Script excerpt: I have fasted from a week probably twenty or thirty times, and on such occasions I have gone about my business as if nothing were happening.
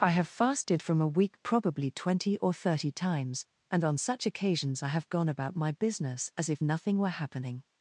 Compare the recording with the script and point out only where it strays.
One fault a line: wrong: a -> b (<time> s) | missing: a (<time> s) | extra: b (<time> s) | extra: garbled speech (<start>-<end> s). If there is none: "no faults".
no faults